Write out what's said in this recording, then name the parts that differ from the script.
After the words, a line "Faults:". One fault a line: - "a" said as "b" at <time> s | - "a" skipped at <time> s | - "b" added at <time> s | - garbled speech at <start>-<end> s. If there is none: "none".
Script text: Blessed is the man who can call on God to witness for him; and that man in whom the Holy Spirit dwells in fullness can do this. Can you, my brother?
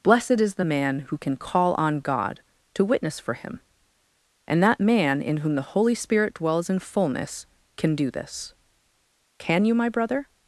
Blessed is the man who can call on God to witness for him; and that man in whom the Holy Spirit dwells in fullness can do this. Can you, my brother?
Faults:
none